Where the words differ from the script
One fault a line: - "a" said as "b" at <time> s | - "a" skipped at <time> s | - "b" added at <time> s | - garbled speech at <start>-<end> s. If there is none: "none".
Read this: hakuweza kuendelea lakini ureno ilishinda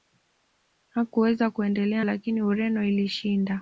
none